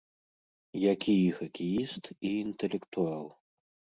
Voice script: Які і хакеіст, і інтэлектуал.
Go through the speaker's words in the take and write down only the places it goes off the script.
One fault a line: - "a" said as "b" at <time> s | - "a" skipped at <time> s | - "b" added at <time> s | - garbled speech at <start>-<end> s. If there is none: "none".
none